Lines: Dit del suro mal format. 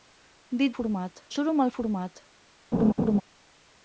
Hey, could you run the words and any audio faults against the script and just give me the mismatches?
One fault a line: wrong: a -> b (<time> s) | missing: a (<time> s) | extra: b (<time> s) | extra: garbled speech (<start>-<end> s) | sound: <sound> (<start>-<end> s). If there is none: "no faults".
wrong: del -> format (0.8 s)
sound: laugh (2.7-3.2 s)